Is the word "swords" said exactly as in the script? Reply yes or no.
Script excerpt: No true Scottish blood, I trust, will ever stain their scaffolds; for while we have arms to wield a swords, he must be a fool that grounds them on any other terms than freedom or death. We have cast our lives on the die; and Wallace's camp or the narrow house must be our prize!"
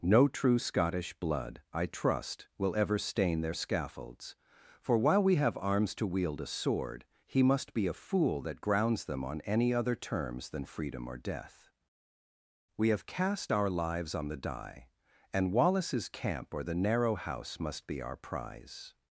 no